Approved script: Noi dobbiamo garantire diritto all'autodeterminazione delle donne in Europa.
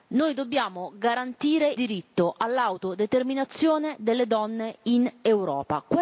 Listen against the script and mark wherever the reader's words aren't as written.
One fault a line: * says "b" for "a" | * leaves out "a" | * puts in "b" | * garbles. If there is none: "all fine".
all fine